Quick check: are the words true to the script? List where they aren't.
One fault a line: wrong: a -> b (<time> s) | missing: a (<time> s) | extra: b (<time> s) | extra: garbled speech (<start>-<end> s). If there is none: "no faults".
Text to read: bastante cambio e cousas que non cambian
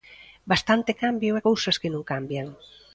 no faults